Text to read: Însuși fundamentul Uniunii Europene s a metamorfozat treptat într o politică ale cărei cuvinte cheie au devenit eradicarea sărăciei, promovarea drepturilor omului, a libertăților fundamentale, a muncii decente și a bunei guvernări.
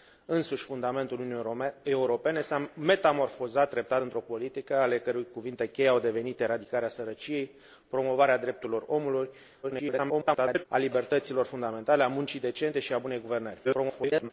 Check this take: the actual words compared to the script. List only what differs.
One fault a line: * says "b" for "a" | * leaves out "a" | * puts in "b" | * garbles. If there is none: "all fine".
* garbles
* garbles